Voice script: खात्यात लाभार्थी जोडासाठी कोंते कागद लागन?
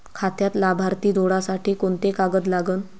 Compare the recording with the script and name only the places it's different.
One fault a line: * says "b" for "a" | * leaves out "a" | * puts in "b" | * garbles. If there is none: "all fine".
all fine